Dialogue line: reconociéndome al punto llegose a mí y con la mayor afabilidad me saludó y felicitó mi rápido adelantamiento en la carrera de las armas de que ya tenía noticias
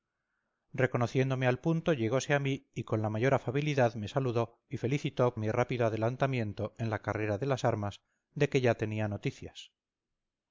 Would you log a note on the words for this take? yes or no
no